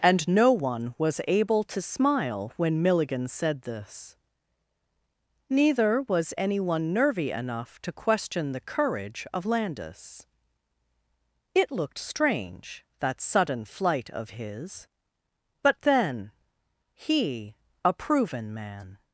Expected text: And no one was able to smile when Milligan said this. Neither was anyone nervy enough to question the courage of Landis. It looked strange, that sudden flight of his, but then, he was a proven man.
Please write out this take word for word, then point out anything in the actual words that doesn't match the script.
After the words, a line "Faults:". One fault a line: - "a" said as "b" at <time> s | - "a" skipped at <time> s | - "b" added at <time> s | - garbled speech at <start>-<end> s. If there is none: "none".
And no one was able to smile when Milligan said this. Neither was anyone nervy enough to question the courage of Landis. It looked strange, that sudden flight of his, but then, he a proven man.
Faults:
- "was" skipped at 17.6 s